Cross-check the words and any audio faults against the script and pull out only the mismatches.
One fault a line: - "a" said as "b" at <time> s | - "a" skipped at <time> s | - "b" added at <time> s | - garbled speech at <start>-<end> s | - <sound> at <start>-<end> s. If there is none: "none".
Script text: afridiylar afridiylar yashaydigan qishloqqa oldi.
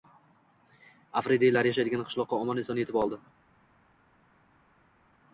- "afridiylar" skipped at 1.7 s
- "omon eson yetib" added at 2.4 s